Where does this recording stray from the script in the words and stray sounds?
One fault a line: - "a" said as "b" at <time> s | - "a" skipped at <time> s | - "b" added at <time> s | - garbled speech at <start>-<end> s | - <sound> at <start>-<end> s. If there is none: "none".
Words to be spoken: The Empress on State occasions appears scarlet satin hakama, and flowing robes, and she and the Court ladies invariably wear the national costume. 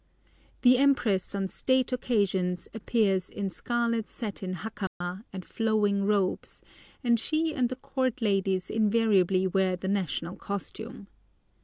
- "in" added at 3.3 s
- dropout at 4.9-5.0 s